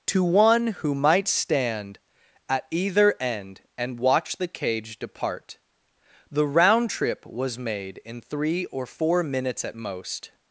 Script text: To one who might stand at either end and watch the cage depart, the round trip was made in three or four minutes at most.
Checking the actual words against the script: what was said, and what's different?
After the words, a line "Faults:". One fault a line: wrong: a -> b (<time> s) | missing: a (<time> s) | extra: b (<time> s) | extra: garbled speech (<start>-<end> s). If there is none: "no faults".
To one who might stand at either end and watch the cage depart, the round trip was made in three or four minutes at most.
Faults:
no faults